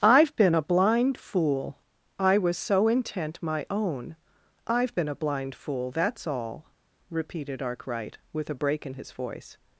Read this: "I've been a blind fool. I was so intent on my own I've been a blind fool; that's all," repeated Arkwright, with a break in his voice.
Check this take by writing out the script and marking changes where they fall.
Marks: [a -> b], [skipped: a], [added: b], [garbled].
"I've been a blind fool. I was so intent [skipped: on] my own I've been a blind fool; that's all," repeated Arkwright, with a break in his voice.